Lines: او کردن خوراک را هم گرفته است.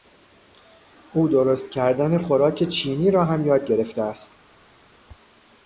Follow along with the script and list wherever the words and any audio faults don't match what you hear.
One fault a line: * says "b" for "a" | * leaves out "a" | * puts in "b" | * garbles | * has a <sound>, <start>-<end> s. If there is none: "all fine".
* puts in "درست"
* puts in "چینی"
* puts in "یاد"